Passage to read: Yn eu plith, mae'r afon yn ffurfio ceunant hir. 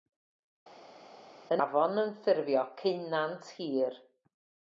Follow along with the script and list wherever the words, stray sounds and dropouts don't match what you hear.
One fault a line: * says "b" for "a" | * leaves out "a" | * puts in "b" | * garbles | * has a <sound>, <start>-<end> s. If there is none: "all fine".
* leaves out "eu plith mae'r"